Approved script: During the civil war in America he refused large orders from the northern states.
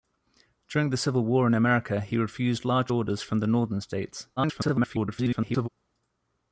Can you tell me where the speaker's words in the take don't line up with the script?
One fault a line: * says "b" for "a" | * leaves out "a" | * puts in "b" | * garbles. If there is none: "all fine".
* garbles